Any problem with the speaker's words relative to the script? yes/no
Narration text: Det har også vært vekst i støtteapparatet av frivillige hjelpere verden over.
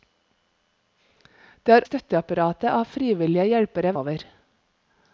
yes